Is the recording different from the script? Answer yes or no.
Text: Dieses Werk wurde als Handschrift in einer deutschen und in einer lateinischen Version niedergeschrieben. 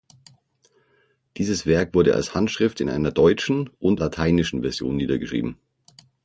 yes